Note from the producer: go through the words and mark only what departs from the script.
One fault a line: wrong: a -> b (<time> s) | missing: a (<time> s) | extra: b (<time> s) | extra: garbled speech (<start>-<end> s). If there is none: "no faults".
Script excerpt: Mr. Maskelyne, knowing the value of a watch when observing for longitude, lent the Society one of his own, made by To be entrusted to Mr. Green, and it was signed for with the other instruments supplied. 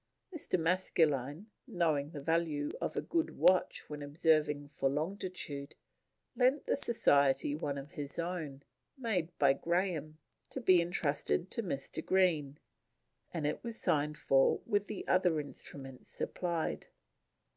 extra: good (3.0 s)
extra: Graham (9.5 s)